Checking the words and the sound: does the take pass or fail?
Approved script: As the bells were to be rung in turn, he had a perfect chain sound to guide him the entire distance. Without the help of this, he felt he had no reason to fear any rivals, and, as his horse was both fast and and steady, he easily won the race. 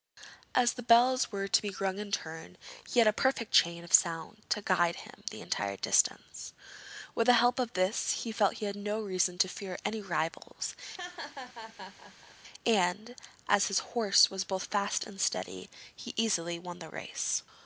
fail